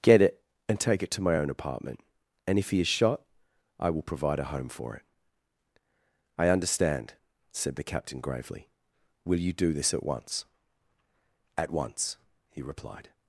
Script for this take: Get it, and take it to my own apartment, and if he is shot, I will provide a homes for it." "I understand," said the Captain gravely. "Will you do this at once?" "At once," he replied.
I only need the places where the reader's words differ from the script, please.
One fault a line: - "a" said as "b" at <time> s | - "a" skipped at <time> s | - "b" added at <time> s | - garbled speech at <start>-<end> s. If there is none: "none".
- "homes" said as "home" at 4.5 s